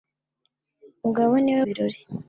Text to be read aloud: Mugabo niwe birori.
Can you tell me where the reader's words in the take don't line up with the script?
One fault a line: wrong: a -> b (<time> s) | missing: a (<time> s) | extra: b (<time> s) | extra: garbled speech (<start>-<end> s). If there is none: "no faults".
no faults